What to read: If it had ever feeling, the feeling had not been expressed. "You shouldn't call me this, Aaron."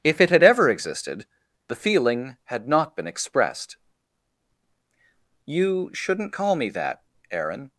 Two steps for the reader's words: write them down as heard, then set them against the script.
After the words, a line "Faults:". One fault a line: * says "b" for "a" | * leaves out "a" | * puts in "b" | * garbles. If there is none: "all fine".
If it had ever existed, the feeling had not been expressed. "You shouldn't call me that, Aaron."
Faults:
* says "existed" for "feeling"
* says "that" for "this"